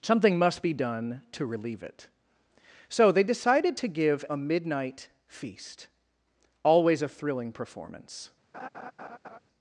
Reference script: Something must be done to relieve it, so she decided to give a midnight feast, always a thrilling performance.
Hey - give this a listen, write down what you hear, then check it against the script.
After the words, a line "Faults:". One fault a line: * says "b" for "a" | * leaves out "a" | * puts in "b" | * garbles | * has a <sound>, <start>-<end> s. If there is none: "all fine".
Something must be done to relieve it, so they decided to give a midnight feast, always a thrilling performance.
Faults:
* says "they" for "she"
* has a laugh, 8.5-9.4 s